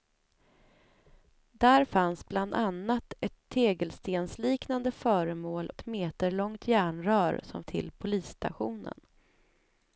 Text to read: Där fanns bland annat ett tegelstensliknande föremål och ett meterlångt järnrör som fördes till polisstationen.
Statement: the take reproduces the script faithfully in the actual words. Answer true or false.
false